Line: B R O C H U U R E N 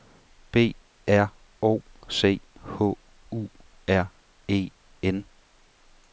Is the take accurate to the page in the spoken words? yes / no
no